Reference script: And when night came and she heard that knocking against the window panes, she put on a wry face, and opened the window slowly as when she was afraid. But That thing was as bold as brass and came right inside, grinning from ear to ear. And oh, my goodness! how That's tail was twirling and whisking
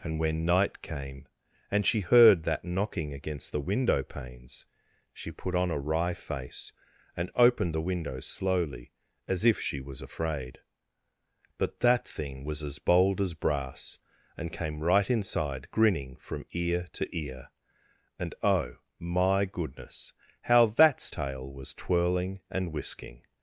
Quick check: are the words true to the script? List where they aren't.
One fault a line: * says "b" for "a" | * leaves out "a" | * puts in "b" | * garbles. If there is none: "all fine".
* says "if" for "when"